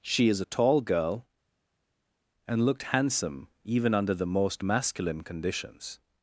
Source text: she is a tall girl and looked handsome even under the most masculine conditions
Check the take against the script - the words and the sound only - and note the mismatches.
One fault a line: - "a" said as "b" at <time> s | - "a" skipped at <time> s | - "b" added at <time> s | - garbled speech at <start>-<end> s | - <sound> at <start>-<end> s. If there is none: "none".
none